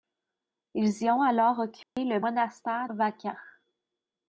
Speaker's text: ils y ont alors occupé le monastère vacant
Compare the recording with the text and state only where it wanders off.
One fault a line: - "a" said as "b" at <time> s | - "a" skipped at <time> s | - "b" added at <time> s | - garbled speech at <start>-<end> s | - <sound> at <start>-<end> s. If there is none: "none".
- dropout at 1.8-2.0 s